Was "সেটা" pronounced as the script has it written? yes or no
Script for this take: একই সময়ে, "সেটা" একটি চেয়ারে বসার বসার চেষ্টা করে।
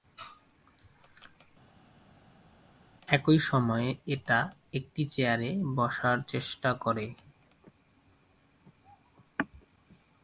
no